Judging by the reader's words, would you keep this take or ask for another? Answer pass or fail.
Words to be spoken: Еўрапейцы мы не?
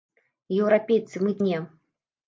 pass